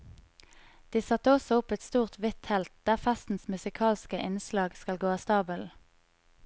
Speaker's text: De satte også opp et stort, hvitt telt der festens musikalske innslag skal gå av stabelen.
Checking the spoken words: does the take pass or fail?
pass